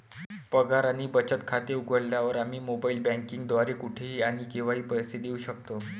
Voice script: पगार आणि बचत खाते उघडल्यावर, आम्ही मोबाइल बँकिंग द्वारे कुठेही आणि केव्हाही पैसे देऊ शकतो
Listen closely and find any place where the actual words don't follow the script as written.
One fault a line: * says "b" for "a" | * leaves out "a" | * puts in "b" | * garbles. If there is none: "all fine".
all fine